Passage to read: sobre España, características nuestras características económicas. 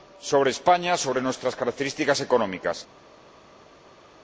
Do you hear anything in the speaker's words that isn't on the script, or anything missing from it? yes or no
yes